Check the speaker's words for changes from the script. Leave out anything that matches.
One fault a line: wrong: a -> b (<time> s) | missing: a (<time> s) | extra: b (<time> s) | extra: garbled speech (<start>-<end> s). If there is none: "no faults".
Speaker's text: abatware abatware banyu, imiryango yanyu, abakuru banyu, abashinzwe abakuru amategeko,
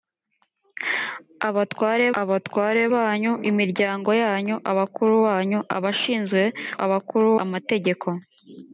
no faults